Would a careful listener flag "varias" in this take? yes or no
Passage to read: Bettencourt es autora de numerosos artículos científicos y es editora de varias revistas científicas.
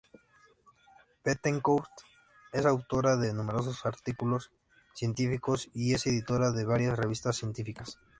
no